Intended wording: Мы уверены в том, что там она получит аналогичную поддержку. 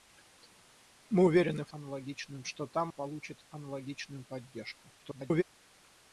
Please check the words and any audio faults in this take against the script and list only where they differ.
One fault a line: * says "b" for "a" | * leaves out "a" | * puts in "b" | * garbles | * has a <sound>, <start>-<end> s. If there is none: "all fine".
* says "аналогичную" for "том"
* leaves out "она"
* garbles